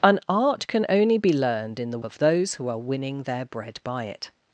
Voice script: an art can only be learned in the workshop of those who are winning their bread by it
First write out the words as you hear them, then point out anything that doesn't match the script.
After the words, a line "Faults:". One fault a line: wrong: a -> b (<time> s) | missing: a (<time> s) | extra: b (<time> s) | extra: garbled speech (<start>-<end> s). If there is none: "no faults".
an art can only be learned in the of those who are winning their bread by it
Faults:
missing: workshop (2.0 s)